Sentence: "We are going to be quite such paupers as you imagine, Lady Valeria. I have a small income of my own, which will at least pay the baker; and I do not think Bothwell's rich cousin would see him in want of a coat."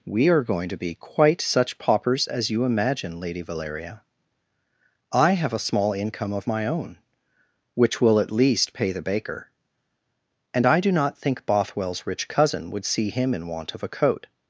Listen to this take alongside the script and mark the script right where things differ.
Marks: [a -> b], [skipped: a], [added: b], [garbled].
"We are going to be quite such paupers as you imagine, Lady Valeria. I have a small income of my own, which will at least pay the baker; and I do not think Bothwell's rich cousin would see him in want of a coat."